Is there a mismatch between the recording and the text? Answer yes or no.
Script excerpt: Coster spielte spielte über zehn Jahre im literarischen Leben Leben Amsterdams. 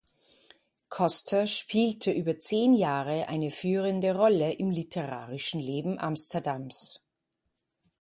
yes